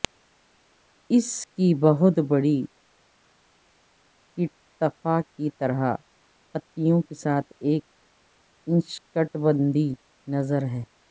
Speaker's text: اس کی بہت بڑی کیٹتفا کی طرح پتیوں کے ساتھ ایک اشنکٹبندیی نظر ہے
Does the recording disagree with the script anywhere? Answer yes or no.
no